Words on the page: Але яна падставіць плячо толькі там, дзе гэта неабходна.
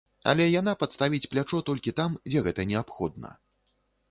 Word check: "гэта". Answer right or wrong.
right